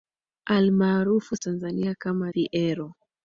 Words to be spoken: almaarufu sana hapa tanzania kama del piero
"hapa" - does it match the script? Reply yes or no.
no